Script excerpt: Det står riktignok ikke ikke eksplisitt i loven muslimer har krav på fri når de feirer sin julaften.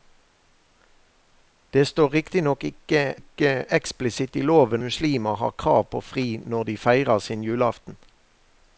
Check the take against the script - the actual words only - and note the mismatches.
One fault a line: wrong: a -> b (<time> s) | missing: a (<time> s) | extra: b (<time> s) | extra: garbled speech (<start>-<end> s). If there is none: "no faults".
no faults